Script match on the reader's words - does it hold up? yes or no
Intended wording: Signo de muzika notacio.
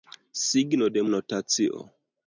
no